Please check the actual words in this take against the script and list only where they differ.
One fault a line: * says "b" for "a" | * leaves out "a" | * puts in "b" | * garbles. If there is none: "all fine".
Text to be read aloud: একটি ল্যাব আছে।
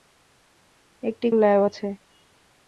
all fine